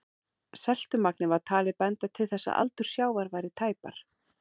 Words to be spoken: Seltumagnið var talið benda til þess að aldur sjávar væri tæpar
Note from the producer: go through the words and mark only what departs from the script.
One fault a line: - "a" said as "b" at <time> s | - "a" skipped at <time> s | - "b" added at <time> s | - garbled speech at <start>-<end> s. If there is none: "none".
none